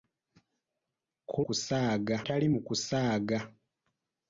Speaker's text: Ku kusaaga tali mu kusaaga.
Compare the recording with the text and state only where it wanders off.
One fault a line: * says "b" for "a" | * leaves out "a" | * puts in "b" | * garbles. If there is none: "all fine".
all fine